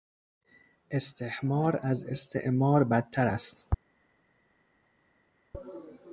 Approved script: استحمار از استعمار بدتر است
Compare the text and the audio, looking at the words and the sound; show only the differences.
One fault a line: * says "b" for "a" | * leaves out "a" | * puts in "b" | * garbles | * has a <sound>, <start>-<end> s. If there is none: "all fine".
all fine